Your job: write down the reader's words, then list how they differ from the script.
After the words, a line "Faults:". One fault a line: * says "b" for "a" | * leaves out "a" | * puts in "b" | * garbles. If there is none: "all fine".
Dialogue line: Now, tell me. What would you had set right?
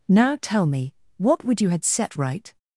Now, tell me. What would you had set right?
Faults:
all fine